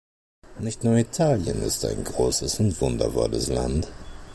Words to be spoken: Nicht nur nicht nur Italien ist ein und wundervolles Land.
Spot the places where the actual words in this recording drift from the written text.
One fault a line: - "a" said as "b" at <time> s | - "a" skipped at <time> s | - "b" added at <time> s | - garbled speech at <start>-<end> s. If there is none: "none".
- "nicht nur" skipped at 0.9 s
- "großes" added at 2.0 s